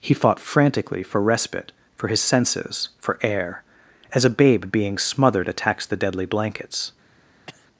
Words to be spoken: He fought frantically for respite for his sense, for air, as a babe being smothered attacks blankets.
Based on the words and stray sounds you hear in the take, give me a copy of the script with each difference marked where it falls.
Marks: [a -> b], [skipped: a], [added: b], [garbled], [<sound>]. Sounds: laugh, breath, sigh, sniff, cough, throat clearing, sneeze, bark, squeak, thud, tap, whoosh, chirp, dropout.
He fought frantically for respite for his [sense, -> senses] for air, as a babe being smothered attacks [added: the deadly] blankets. [cough]